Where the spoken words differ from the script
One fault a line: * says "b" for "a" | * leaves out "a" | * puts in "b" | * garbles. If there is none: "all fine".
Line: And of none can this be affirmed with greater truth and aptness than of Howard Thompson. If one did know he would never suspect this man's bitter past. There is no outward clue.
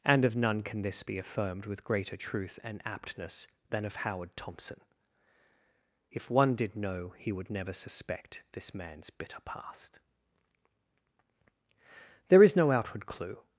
all fine